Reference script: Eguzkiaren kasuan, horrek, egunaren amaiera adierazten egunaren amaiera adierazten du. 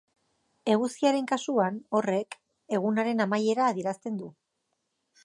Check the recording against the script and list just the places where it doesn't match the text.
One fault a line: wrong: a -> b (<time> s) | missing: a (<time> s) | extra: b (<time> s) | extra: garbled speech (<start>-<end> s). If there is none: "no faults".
missing: egunaren amaiera adierazten (4.2 s)